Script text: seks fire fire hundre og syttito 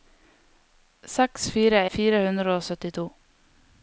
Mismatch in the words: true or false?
false